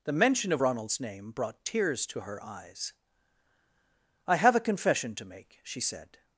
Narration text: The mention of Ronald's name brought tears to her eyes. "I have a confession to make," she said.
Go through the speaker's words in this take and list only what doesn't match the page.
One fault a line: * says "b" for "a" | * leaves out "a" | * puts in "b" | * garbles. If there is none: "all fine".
all fine